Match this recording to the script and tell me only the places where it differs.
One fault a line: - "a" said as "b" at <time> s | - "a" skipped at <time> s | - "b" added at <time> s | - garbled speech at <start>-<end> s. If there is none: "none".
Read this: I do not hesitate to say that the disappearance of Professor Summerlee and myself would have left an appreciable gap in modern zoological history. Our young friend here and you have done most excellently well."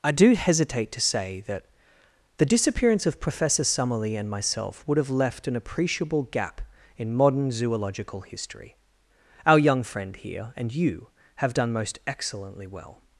- "not" skipped at 0.3 s